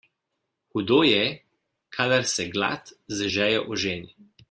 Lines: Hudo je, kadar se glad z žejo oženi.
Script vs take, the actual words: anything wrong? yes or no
no